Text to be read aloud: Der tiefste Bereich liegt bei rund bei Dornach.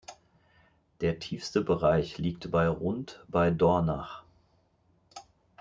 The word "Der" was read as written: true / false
true